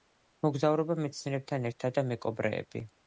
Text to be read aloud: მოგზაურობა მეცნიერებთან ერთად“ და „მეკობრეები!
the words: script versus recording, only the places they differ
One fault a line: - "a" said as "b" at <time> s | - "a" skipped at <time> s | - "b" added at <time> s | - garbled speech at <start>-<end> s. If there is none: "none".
none